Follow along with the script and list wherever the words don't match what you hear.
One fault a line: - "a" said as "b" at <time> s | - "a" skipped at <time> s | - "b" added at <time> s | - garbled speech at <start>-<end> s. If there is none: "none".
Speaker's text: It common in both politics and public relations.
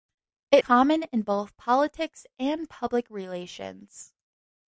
none